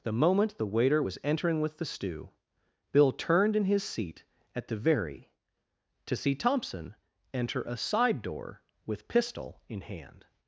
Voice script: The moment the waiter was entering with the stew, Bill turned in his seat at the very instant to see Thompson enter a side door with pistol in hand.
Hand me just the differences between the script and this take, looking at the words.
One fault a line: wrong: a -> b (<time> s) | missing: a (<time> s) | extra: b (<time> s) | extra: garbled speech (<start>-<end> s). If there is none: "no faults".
missing: instant (5.3 s)